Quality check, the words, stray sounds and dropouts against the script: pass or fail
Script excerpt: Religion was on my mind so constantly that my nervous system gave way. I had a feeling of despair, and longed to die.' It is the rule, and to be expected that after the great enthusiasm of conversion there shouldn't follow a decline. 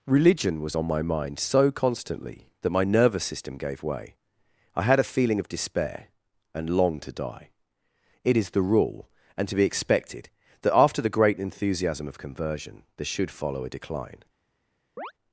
fail